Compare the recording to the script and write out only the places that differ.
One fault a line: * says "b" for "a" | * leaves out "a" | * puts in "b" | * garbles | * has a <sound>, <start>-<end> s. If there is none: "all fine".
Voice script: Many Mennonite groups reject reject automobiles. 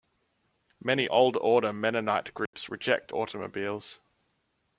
* puts in "Old Order"
* has a dropout, 2.5-2.5 s
* leaves out "reject"